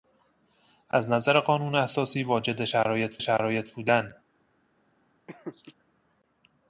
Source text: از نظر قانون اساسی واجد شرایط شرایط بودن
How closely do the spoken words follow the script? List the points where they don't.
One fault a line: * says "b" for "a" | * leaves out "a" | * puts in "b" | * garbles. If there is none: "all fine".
all fine